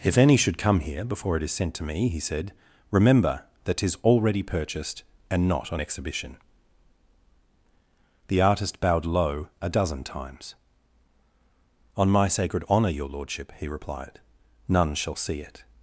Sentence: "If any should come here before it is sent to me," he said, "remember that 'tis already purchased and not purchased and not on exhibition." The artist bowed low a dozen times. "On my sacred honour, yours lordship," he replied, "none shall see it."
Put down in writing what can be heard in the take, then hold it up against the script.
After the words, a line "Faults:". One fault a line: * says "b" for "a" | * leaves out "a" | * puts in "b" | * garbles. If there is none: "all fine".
"If any should come here before it is sent to me," he said, "remember that 'tis already purchased and not on exhibition." The artist bowed low a dozen times. "On my sacred honour, your lordship," he replied, "none shall see it."
Faults:
* leaves out "purchased and not"
* says "your" for "yours"